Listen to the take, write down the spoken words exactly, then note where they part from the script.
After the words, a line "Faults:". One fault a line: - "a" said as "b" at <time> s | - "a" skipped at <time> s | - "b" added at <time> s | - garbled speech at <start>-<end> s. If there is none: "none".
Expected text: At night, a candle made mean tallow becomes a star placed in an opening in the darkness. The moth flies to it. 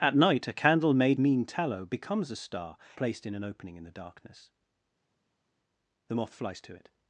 At night, a candle made mean tallow becomes a star placed in an opening in the darkness. The moth flies to it.
Faults:
none